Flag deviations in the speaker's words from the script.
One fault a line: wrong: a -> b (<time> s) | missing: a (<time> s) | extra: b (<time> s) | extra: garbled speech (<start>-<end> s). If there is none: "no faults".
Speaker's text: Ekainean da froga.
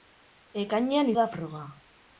no faults